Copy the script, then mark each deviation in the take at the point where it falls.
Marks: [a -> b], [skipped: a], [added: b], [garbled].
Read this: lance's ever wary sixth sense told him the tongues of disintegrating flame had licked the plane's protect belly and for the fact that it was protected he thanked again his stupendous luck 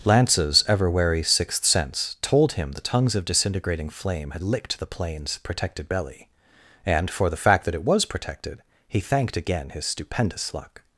lance's ever wary sixth sense told him the tongues of disintegrating flame had licked the plane's [protect -> protected] belly and for the fact that it was protected he thanked again his stupendous luck